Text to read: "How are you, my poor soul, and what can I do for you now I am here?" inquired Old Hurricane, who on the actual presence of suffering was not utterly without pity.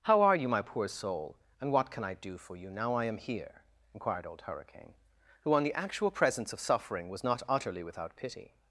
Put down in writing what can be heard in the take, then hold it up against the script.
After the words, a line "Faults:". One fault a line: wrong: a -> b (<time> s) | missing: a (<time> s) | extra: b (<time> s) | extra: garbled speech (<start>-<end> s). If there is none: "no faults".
"How are you, my poor soul, and what can I do for you now I am here?" inquired Old Hurricane, who on the actual presence of suffering was not utterly without pity.
Faults:
no faults